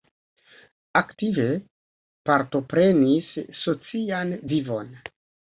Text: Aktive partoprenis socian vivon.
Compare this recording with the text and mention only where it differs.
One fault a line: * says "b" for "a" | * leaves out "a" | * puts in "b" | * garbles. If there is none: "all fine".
all fine